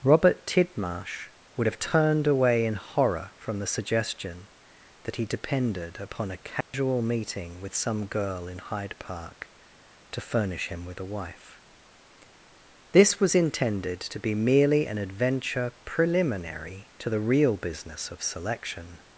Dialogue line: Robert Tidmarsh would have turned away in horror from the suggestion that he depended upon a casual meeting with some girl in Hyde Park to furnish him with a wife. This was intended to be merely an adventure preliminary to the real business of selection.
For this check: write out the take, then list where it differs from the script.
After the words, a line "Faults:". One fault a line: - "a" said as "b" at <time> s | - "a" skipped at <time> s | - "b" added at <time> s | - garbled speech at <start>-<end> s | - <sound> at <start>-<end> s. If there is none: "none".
Robert Tidmarsh would have turned away in horror from the suggestion that he depended upon a casual meeting with some girl in Hyde Park to furnish him with a wife. This was intended to be merely an adventure preliminary to the real business of selection.
Faults:
- dropout at 6.6-6.7 s